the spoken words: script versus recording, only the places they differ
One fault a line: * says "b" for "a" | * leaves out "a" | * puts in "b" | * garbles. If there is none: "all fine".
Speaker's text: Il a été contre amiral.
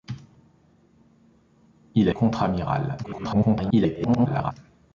* leaves out "été"
* garbles